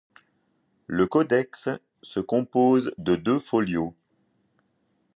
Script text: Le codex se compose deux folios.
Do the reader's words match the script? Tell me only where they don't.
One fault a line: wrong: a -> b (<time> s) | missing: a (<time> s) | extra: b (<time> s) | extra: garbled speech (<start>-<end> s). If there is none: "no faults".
extra: de (3.0 s)